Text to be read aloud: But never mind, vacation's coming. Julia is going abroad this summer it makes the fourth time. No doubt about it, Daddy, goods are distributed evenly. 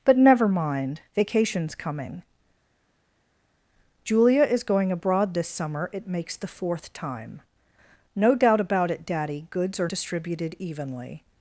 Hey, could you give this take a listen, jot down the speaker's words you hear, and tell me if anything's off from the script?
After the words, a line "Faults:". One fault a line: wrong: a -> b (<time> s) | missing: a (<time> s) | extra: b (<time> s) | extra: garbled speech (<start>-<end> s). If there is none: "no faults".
But never mind, vacation's coming. Julia is going abroad this summer it makes the fourth time. No doubt about it, Daddy, goods are distributed evenly.
Faults:
no faults